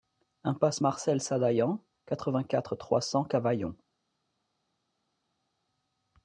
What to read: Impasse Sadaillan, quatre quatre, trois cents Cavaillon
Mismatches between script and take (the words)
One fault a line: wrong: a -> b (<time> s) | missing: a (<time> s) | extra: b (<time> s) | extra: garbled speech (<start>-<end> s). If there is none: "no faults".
extra: Marcel (0.8 s)
extra: vingt (2.3 s)